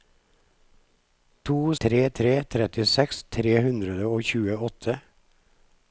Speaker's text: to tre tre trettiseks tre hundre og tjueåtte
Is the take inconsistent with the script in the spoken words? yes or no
no